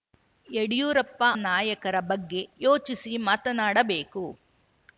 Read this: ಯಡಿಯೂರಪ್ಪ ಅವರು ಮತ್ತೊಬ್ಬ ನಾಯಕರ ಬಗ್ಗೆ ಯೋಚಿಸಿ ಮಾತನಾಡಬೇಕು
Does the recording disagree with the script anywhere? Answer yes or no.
yes